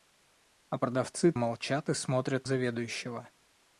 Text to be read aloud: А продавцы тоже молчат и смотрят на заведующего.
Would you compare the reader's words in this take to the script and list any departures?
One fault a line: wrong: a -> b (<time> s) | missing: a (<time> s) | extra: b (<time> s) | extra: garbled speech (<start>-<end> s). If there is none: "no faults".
missing: тоже (1.3 s)
missing: на (2.5 s)